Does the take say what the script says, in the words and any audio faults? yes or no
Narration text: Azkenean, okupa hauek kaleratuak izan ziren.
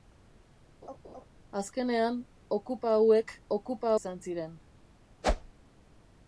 no